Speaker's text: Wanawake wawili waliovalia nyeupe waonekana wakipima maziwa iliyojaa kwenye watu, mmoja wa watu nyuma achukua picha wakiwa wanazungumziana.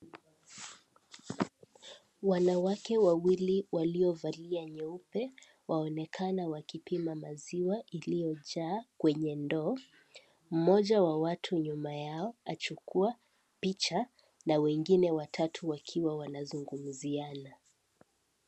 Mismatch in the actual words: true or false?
true